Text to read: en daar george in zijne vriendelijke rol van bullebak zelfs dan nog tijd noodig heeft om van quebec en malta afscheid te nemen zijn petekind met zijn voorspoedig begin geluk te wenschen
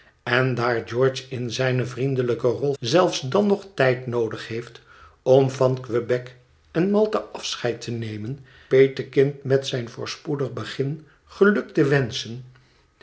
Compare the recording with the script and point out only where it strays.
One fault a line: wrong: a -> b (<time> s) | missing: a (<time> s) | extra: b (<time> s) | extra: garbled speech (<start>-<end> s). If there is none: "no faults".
missing: van bullebak (2.7 s)
missing: zijn (8.4 s)